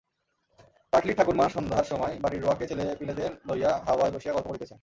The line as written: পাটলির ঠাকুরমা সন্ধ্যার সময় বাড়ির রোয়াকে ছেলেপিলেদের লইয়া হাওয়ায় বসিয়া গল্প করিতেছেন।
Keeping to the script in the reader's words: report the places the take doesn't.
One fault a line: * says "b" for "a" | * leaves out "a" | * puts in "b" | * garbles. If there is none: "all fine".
all fine